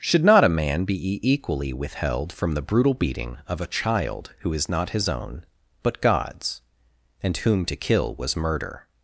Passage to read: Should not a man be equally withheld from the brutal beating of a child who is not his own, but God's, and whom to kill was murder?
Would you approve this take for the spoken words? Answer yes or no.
yes